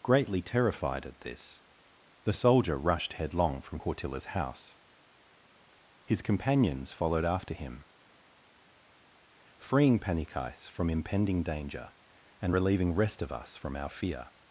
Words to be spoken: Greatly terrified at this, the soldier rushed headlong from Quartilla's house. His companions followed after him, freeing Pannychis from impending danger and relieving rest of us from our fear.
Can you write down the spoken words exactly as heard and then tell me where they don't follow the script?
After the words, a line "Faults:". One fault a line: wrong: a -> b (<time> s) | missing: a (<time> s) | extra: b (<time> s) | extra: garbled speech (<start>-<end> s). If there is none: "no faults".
Greatly terrified at this, the soldier rushed headlong from Quartilla's house. His companions followed after him, freeing Pannychis from impending danger and relieving rest of us from our fear.
Faults:
no faults